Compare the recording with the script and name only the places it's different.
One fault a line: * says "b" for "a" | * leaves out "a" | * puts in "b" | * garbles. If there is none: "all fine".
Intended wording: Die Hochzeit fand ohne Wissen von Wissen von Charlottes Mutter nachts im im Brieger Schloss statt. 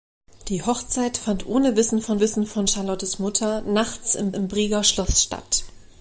all fine